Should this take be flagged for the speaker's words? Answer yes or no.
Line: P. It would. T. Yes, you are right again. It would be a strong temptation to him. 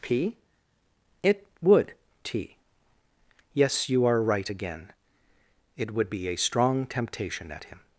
yes